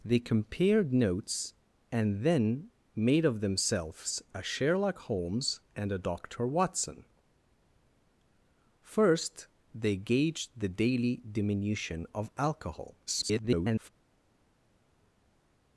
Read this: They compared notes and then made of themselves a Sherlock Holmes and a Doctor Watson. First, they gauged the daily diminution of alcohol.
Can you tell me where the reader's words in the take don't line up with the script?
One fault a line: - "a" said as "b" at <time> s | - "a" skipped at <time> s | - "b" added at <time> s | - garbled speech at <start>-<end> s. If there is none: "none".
- garbled speech at 13.1-13.9 s